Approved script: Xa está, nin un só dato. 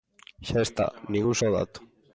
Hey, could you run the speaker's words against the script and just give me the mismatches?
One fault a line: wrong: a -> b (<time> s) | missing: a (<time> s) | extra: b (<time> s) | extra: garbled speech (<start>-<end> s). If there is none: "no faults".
no faults